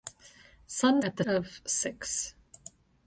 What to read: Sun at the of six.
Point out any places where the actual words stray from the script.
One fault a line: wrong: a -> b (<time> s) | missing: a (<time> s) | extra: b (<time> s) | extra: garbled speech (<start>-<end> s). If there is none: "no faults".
no faults